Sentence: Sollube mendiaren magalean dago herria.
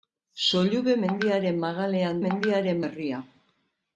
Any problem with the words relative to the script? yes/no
yes